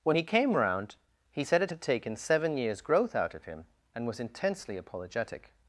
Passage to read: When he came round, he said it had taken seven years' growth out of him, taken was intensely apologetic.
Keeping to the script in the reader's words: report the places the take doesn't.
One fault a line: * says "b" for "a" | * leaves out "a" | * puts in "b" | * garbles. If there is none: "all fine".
* says "and" for "taken"